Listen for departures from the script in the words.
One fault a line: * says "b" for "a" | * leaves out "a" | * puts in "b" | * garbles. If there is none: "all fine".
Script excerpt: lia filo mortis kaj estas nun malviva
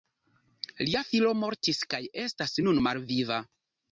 all fine